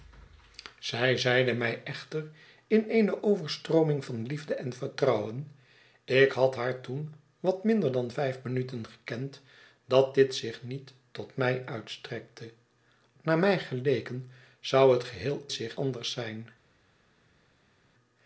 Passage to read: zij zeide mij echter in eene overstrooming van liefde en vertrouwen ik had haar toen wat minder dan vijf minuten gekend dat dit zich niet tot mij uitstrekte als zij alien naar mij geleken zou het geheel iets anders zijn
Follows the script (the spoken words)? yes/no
no